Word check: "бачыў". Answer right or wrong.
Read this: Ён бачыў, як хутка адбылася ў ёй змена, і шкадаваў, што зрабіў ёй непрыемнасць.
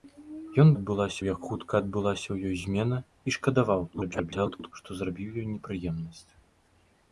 wrong